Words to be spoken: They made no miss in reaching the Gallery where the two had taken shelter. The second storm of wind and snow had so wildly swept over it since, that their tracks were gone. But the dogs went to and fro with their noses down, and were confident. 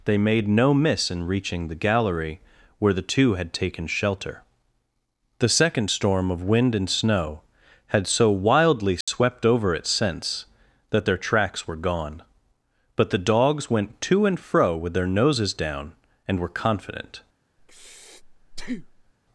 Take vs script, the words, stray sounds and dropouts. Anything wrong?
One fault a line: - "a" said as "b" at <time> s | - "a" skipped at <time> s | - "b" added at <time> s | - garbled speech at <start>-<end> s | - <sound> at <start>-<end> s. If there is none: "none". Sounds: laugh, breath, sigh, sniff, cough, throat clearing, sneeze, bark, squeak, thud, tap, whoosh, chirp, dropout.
- dropout at 9.0-9.1 s
- breath at 17.6-19.1 s